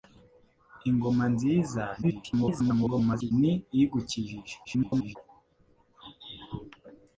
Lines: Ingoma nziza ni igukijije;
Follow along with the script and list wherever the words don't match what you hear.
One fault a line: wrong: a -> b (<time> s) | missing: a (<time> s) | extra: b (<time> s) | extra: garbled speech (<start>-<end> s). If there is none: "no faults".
extra: garbled speech (2.0-3.3 s)
extra: garbled speech (4.6-5.2 s)